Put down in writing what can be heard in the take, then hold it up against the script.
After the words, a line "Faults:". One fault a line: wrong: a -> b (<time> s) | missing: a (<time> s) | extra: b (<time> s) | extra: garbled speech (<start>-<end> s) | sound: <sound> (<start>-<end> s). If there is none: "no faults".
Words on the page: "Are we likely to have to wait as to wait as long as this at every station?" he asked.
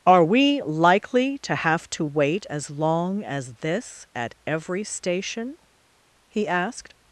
"Are we likely to have to wait as long as this at every station?" he asked.
Faults:
missing: to wait as (2.7 s)